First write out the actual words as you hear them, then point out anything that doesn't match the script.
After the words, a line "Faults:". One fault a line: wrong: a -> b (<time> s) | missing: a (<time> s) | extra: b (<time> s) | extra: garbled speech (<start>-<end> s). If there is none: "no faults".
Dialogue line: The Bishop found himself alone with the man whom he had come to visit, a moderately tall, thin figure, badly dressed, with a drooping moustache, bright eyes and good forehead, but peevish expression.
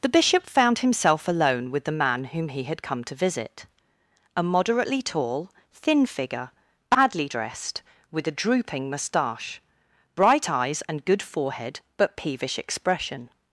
The Bishop found himself alone with the man whom he had come to visit, a moderately tall, thin figure, badly dressed, with a drooping moustache, bright eyes and good forehead, but peevish expression.
Faults:
no faults